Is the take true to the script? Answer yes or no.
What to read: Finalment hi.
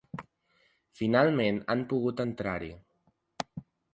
no